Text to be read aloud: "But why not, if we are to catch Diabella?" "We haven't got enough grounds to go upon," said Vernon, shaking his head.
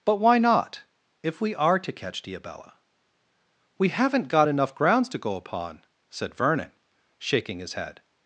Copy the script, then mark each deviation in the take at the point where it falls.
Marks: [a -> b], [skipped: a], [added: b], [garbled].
"But why not, if we are to catch Diabella?" "We haven't got enough grounds to go upon," said Vernon, shaking his head.